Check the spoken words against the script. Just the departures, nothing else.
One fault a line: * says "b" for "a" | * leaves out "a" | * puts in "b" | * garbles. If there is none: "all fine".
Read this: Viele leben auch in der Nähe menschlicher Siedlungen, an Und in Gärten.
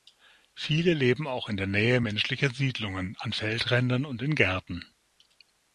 * puts in "Feldrändern"